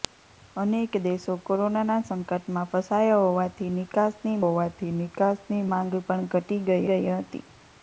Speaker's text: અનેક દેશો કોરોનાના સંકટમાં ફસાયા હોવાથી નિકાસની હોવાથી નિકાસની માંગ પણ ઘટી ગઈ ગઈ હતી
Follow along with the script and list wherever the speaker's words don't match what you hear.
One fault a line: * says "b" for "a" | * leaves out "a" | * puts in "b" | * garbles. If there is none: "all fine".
all fine